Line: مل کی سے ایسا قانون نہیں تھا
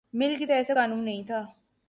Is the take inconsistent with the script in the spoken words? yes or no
no